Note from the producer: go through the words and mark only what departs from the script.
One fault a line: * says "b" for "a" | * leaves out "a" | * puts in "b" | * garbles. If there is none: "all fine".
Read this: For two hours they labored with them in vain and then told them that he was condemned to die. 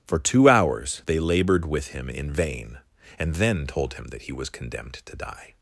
* says "him" for "them"
* says "him" for "them"